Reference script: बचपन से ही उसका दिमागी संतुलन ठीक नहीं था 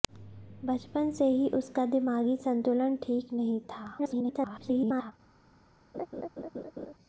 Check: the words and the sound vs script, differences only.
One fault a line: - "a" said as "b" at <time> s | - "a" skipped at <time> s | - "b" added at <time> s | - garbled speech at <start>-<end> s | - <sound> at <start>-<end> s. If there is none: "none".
- garbled speech at 4.0-5.1 s
- laugh at 5.9-6.9 s